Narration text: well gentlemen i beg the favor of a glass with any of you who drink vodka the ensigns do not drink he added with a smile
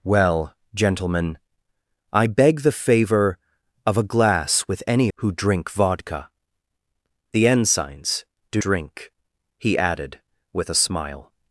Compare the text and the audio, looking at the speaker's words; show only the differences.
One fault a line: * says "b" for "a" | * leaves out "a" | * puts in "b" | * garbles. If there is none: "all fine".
* leaves out "of you"
* leaves out "not"